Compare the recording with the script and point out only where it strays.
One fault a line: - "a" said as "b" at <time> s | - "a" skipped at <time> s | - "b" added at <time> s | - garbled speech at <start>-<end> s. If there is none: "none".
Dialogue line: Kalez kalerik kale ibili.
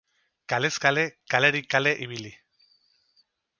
- "kale" added at 0.8 s